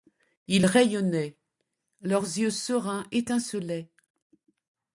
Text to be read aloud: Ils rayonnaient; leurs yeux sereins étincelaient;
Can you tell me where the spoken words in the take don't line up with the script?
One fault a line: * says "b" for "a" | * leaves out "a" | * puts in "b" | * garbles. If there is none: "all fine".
all fine